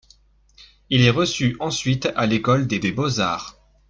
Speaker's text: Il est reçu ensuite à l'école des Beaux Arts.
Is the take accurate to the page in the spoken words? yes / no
no